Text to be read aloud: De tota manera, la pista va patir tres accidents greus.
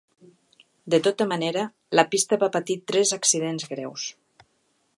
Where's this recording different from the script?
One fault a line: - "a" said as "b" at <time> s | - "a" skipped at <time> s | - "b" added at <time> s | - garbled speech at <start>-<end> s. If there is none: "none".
none